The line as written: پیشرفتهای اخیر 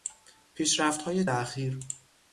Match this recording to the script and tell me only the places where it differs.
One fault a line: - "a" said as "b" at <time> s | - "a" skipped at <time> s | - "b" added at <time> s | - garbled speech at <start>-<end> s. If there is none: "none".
none